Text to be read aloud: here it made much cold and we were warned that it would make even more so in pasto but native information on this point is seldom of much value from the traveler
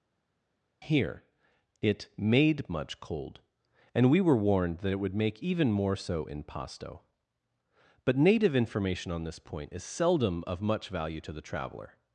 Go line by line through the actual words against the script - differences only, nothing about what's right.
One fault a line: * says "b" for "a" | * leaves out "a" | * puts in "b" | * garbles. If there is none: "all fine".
* says "to" for "from"